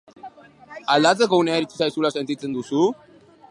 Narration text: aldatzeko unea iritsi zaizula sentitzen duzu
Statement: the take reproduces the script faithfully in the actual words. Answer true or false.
true